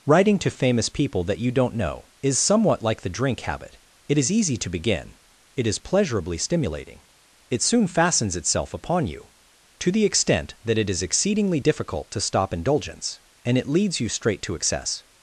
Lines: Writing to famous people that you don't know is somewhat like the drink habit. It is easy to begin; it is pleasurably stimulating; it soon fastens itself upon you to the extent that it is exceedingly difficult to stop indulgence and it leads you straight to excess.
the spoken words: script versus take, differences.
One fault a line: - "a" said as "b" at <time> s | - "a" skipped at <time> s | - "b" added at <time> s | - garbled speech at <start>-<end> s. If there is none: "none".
none